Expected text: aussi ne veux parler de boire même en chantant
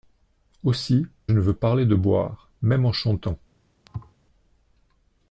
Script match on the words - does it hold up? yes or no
yes